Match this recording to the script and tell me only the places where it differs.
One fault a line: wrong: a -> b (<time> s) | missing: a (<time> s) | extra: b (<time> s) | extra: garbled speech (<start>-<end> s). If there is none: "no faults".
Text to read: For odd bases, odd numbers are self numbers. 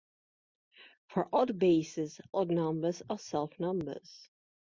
no faults